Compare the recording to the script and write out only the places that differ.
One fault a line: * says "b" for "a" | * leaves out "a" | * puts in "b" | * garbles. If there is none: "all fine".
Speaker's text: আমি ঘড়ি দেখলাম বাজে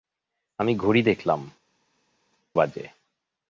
all fine